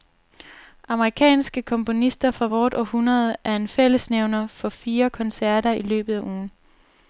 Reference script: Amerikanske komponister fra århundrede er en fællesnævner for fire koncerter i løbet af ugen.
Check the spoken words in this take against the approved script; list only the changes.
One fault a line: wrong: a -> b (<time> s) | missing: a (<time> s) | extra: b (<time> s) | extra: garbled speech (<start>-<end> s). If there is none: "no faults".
extra: vort (2.4 s)